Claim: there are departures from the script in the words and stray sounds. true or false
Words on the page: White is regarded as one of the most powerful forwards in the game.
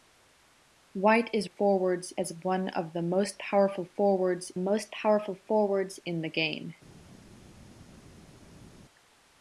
true